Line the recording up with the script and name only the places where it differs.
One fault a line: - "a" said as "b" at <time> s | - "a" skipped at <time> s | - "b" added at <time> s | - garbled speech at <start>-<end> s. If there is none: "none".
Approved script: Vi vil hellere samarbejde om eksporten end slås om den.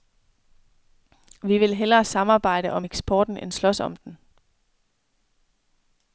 none